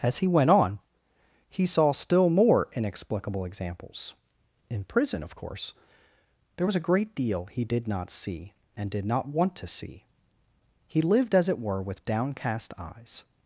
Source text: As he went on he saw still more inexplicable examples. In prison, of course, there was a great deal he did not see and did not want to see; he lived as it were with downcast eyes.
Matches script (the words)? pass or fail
pass